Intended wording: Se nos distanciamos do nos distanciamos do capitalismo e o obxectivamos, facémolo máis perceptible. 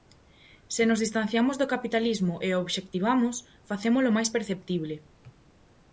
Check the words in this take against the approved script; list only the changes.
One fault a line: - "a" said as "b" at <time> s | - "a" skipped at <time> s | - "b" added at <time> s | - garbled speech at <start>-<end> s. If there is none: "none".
- "nos distanciamos do" skipped at 1.7 s